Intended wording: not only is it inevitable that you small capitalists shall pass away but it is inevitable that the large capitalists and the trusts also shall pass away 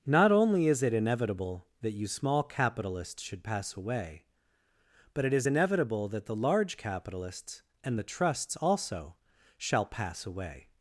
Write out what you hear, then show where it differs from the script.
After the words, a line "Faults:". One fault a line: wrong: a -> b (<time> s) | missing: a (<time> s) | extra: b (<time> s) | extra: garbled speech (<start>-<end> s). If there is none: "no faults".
not only is it inevitable that you small capitalists should pass away but it is inevitable that the large capitalists and the trusts also shall pass away
Faults:
wrong: shall -> should (3.2 s)